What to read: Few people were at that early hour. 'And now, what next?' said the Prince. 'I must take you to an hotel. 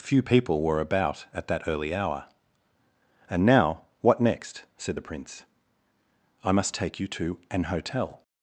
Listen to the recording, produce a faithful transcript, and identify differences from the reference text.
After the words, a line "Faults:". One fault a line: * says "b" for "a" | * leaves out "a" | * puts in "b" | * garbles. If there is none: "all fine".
Few people were about at that early hour. 'And now, what next?' said the Prince. 'I must take you to an hotel.
Faults:
* puts in "about"